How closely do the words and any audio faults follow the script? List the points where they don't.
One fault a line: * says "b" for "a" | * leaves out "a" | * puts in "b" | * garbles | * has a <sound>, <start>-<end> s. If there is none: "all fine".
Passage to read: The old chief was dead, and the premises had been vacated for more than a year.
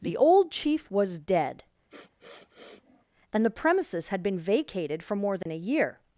* has a sniff, 1.9-3.0 s
* has a dropout, 5.4-5.5 s